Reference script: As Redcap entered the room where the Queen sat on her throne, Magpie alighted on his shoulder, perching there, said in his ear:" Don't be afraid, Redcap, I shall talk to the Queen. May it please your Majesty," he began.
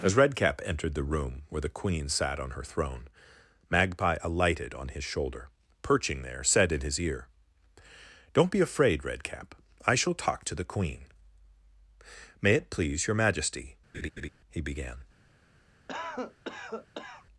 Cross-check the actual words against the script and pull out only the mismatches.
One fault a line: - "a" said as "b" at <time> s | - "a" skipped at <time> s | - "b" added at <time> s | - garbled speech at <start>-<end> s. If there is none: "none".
none